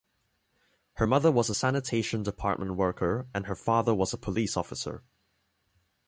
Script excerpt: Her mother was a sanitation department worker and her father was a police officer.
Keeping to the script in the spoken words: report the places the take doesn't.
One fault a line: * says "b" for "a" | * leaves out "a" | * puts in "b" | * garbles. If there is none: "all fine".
all fine